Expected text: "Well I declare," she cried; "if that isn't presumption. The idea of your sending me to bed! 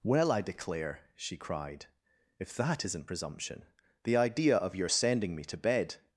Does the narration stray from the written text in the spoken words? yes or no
no